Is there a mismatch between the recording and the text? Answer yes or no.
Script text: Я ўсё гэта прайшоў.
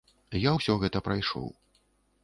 no